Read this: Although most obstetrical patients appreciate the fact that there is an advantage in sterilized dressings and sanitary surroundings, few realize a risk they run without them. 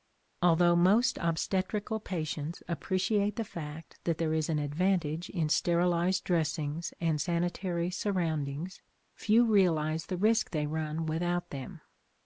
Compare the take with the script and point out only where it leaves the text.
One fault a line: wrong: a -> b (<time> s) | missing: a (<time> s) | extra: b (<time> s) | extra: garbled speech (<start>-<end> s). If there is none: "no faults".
wrong: a -> the (10.0 s)